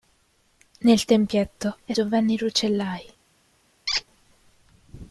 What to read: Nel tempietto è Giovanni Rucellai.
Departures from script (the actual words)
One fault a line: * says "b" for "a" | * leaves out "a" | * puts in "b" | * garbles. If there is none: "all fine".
all fine